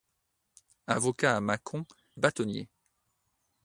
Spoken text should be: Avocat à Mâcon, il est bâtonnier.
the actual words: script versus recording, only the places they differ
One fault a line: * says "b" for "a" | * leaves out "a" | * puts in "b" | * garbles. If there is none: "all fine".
* leaves out "il"